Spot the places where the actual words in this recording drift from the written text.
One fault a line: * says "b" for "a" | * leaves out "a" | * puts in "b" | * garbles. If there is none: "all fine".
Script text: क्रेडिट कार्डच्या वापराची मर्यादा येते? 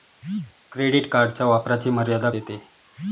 all fine